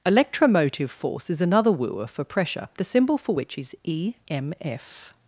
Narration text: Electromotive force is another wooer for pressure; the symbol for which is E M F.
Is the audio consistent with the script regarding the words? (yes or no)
yes